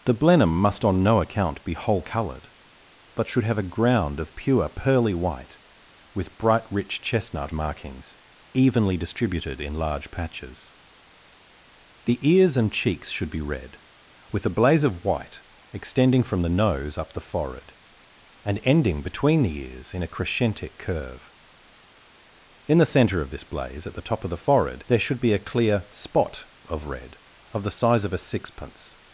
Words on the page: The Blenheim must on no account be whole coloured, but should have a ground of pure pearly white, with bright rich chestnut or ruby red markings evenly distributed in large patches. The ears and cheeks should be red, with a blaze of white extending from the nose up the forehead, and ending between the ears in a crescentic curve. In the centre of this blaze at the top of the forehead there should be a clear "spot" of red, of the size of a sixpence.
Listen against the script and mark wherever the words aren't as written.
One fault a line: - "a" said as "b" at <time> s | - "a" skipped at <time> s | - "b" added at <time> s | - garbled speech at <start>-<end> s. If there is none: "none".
- "or ruby red" skipped at 7.5 s